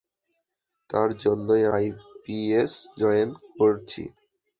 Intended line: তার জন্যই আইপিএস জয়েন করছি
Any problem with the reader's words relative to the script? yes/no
no